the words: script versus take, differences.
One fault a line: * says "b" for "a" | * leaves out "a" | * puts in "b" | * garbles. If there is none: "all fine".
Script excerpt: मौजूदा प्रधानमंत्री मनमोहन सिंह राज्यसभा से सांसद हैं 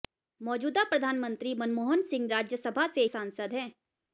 all fine